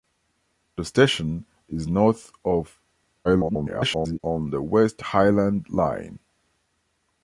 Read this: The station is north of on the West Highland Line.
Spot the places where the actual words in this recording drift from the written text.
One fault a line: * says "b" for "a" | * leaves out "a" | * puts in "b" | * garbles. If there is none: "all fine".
* garbles